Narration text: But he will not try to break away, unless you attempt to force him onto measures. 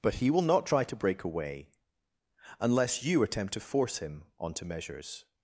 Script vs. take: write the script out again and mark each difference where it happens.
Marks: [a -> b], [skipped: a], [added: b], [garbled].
But he will not try to break away, unless you attempt to force him onto measures.